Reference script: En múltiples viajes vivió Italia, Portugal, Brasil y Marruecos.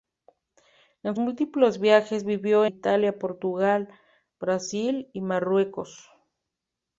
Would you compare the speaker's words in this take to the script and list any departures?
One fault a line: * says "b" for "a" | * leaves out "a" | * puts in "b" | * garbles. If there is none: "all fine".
all fine